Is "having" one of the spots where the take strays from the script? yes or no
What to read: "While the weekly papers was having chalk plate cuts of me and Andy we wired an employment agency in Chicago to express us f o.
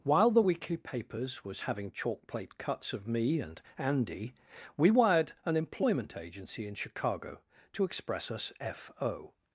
no